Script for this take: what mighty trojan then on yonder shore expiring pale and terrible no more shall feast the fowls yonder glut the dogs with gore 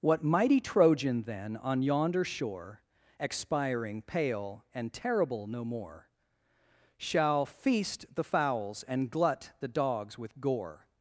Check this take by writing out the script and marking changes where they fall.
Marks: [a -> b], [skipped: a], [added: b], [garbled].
what mighty trojan then on yonder shore expiring pale and terrible no more shall feast the fowls [yonder -> and] glut the dogs with gore